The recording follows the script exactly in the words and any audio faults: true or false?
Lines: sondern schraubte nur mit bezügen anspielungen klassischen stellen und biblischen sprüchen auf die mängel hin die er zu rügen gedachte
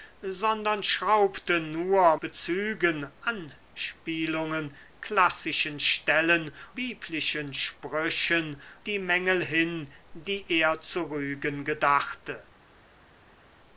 false